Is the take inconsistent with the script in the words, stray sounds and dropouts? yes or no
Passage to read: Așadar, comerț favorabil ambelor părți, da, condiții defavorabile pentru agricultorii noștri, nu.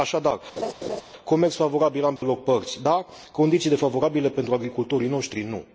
yes